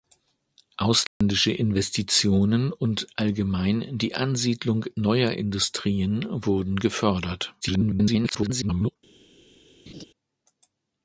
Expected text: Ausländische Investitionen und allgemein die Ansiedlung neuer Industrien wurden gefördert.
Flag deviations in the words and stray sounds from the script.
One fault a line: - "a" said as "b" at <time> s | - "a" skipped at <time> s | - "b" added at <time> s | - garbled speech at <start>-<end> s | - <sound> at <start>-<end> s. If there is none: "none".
- dropout at 1.1-1.2 s
- garbled speech at 7.6-9.0 s
- laugh at 9.9-10.0 s